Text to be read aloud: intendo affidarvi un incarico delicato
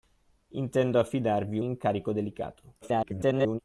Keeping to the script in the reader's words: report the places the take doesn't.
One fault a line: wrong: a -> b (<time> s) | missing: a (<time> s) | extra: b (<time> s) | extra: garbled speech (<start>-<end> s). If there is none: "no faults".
missing: un (1.6 s)
extra: garbled speech (2.8-3.6 s)